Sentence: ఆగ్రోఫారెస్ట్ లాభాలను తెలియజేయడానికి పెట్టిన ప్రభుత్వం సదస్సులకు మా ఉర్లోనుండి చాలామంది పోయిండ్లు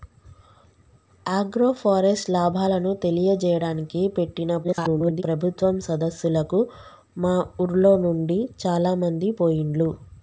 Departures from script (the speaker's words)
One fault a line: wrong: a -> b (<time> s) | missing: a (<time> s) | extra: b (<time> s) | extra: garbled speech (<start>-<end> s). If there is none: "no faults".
extra: garbled speech (4.6-5.2 s)